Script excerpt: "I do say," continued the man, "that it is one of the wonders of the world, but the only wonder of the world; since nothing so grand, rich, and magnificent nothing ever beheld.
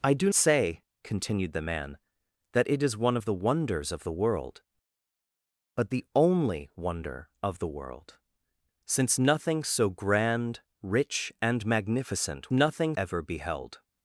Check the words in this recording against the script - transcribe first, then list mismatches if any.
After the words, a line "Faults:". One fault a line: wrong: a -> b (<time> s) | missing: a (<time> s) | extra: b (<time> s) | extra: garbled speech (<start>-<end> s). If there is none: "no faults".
"I do say," continued the man, "that it is one of the wonders of the world, but the only wonder of the world; since nothing so grand, rich, and magnificent nothing ever beheld.
Faults:
no faults